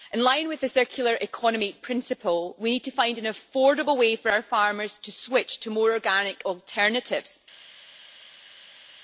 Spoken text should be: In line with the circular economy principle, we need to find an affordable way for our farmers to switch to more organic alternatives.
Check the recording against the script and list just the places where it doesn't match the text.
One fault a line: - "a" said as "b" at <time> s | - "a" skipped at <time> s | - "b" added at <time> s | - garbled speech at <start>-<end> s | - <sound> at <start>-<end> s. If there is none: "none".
none